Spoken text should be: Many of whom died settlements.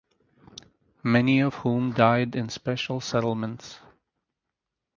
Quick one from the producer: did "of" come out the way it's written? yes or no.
yes